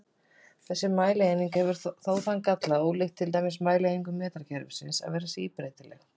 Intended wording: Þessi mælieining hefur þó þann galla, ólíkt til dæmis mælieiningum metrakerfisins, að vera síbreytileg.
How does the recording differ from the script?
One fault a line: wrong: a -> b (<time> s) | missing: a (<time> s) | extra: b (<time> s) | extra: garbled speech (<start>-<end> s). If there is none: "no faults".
no faults